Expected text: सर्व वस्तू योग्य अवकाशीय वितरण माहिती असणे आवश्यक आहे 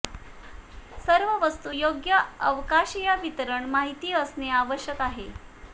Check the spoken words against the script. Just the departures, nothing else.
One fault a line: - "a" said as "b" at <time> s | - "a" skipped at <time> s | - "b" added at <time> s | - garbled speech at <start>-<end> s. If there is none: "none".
none